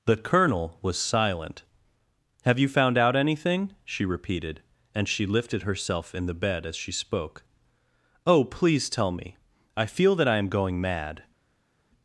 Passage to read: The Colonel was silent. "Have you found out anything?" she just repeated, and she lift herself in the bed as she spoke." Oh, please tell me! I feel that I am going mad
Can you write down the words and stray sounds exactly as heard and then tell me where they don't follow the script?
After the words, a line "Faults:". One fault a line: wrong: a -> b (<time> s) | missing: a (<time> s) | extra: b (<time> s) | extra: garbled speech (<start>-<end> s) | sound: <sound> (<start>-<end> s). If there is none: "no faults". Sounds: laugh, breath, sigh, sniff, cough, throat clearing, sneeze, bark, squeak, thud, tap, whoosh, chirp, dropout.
The Colonel was silent. "Have you found out anything?" she repeated, and she lifted herself in the bed as she spoke." Oh, please tell me! I feel that I am going mad
Faults:
missing: just (4.0 s)
wrong: lift -> lifted (5.3 s)